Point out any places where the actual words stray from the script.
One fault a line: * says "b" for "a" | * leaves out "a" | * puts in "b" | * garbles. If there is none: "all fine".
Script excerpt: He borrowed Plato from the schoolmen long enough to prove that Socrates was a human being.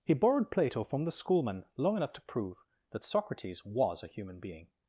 all fine